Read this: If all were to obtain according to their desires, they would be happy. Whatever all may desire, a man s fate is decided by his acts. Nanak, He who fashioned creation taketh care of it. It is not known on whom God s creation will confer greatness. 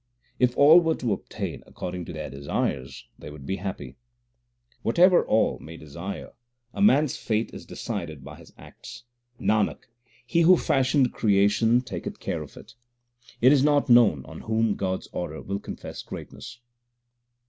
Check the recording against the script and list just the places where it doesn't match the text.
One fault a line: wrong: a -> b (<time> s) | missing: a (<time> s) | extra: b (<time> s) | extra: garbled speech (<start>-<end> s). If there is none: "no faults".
wrong: creation -> order (15.1 s)